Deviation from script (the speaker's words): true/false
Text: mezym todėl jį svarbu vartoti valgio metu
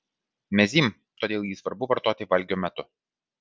false